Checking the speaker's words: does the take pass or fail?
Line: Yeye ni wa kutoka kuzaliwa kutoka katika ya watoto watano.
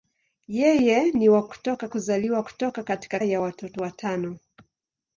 pass